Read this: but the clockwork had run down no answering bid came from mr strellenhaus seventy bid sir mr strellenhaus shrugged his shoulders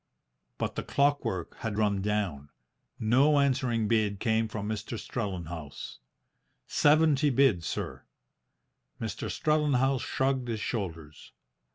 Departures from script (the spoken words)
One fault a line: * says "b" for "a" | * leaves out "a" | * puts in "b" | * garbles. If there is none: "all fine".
all fine